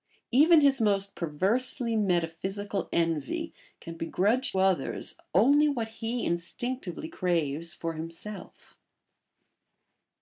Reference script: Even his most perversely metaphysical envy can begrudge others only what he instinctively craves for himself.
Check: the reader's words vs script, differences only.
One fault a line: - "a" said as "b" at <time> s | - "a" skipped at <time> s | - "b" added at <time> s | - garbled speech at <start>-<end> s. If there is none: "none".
none